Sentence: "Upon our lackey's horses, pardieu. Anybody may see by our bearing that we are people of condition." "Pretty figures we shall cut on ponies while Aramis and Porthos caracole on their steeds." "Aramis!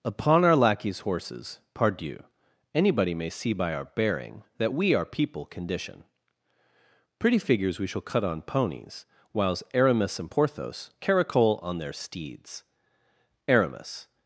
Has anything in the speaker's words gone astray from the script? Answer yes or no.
yes